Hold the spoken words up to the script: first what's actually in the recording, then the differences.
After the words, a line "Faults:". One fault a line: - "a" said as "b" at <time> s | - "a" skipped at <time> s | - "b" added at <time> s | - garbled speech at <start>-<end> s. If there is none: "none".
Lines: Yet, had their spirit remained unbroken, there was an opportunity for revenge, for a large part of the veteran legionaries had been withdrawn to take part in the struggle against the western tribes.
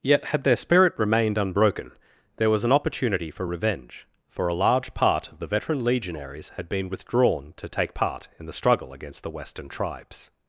Yet, had their spirit remained unbroken, there was an opportunity for revenge, for a large part of the veteran legionaries had been withdrawn to take part in the struggle against the western tribes.
Faults:
none